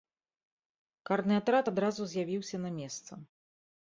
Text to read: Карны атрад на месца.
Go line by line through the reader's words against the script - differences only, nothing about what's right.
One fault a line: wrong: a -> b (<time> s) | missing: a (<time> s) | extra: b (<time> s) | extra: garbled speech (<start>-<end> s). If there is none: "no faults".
extra: адразу з'явіўся (1.7 s)